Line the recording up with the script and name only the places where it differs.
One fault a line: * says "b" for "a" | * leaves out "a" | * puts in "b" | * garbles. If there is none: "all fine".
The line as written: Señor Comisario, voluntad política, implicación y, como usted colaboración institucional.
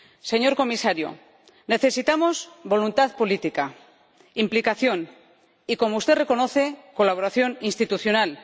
* puts in "necesitamos"
* puts in "reconoce"